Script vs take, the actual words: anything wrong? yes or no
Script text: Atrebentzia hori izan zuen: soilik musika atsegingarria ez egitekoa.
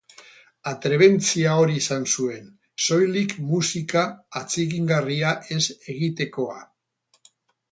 no